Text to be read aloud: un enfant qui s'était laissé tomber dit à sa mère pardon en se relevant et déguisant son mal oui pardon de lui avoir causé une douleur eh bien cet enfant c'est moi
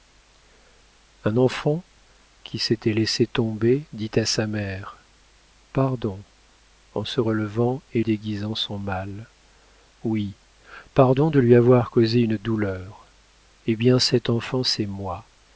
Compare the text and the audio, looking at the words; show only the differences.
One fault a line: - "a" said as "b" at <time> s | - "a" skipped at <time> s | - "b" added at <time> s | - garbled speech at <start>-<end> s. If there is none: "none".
none